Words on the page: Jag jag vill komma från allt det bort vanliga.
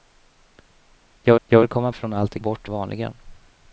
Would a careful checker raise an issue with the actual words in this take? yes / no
no